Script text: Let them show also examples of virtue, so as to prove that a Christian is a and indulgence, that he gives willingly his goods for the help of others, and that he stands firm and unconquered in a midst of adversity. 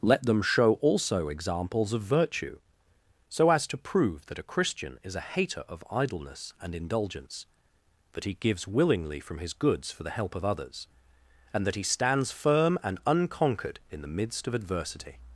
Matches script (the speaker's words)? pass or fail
fail